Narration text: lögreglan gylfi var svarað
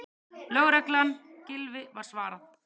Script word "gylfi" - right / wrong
right